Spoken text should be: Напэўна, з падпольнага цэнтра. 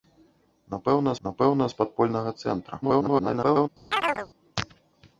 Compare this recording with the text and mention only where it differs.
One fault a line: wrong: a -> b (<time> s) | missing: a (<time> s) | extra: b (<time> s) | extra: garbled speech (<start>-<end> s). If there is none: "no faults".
extra: напэўна (1.3 s)
extra: garbled speech (2.8-3.7 s)